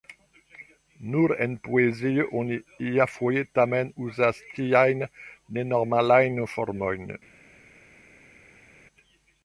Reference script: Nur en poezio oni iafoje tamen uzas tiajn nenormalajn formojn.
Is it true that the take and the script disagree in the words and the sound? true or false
false